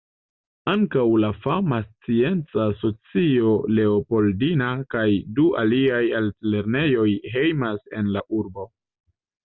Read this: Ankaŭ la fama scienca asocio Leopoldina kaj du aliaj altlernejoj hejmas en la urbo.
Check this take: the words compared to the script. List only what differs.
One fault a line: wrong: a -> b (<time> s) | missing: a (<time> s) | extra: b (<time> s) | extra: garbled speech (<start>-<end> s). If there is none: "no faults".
no faults